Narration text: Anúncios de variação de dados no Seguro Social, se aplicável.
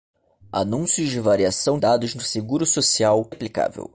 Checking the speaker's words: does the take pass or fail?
fail